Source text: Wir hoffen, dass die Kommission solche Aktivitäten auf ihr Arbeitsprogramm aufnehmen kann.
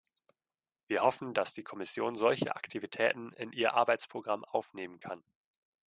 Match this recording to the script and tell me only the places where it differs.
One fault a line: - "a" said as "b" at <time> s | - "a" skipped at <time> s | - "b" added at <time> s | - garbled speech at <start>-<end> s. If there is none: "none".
- "auf" said as "in" at 3.3 s